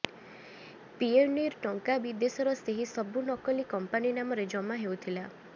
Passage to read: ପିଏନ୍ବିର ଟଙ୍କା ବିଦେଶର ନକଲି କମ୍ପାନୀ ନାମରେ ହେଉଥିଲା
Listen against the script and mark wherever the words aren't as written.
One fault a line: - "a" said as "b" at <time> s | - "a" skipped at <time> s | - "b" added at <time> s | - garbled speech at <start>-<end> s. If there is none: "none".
- "ସେହି ସବୁ" added at 2.6 s
- "ଜମା" added at 4.6 s